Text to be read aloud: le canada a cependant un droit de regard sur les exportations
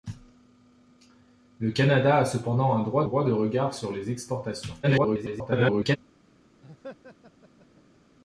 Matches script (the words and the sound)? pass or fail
fail